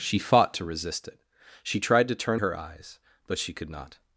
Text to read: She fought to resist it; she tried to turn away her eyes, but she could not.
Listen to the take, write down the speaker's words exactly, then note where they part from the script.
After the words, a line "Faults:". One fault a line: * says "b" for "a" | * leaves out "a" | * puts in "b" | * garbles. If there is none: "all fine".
She fought to resist it; she tried to turn her eyes, but she could not.
Faults:
* leaves out "away"